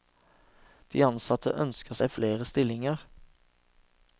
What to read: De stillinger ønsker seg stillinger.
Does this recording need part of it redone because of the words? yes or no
yes